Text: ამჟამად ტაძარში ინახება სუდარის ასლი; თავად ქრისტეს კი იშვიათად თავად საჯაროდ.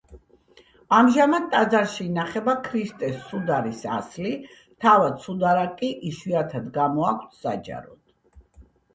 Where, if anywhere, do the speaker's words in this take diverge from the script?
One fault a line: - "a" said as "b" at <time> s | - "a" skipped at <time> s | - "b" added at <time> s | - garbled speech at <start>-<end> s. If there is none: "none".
- "ქრისტეს" added at 2.7 s
- "ქრისტეს" said as "სუდარა" at 5.2 s
- "თავად" said as "გამოაქვთ" at 6.8 s